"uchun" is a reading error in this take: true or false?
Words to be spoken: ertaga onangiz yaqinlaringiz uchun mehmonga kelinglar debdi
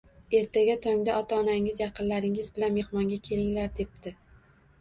true